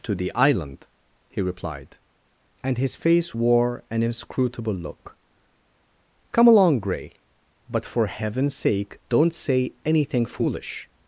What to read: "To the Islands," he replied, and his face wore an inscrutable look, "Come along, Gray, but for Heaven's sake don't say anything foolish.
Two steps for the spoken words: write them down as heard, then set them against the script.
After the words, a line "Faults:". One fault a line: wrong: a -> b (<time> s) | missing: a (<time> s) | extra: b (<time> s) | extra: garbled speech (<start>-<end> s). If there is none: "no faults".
"To the Island," he replied, and his face wore an inscrutable look, "Come along, Gray, but for Heaven's sake don't say anything foolish.
Faults:
wrong: Islands -> Island (0.3 s)